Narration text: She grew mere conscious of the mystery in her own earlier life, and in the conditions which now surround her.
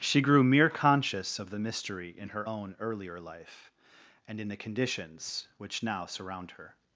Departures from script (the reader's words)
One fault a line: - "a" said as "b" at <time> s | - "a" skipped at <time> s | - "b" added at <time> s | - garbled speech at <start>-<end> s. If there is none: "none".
none